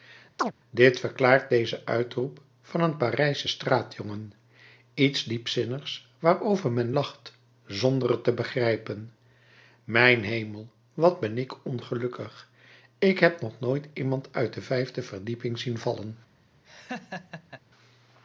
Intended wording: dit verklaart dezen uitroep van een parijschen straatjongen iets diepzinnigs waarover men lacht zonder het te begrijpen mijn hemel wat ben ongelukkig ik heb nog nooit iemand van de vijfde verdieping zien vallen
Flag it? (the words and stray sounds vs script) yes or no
yes